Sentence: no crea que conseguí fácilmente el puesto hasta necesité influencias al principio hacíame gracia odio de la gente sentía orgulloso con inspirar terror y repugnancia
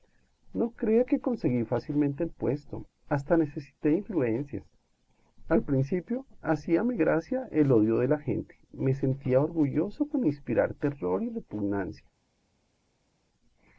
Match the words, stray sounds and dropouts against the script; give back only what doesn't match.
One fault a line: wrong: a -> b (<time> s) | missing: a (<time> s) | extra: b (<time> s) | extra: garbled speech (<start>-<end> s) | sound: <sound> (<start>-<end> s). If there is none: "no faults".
extra: el (7.5 s)
extra: me (8.7 s)